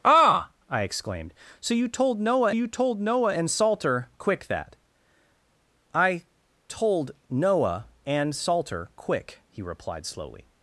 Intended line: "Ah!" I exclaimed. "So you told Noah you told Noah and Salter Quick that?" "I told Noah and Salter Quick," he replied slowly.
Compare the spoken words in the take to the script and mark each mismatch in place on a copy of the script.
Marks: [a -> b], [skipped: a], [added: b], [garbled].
"Ah!" I exclaimed. "So you told Noah you told Noah and Salter Quick that?" "I told Noah and Salter Quick," he replied slowly.